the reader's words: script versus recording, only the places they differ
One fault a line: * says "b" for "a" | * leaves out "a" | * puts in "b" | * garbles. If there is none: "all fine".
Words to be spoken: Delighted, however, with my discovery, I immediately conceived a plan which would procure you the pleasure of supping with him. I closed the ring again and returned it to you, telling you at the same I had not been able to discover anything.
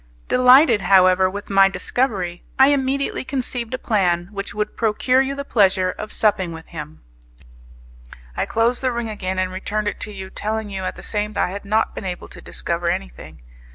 all fine